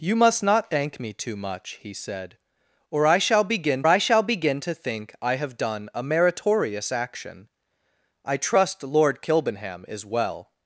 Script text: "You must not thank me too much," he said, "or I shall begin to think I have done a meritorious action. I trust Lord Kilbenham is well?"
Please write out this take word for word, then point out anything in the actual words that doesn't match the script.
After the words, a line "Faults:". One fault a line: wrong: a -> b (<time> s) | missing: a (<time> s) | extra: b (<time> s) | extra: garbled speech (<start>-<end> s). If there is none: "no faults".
"You must not thank me too much," he said, "or I shall begin I shall begin to think I have done a meritorious action. I trust Lord Kilbenham is well?"
Faults:
extra: I shall begin (3.9 s)